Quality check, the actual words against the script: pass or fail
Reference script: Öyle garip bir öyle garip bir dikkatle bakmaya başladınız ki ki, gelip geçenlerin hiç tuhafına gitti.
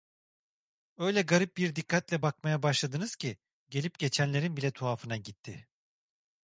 fail